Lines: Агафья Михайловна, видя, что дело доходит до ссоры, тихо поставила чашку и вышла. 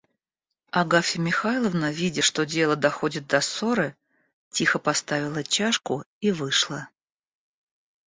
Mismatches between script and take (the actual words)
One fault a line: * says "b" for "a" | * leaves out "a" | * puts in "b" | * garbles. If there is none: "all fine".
all fine